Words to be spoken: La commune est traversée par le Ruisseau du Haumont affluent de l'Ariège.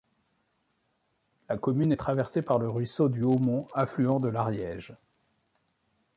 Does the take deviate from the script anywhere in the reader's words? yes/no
no